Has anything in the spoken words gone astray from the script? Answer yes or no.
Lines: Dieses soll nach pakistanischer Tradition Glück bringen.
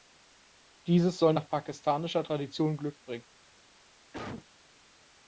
no